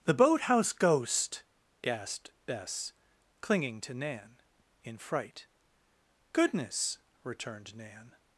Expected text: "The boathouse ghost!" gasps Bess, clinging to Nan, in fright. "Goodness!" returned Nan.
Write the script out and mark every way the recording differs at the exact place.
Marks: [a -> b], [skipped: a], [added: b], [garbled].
"The boathouse ghost!" [gasps -> gasped] Bess, clinging to Nan, in fright. "Goodness!" returned Nan.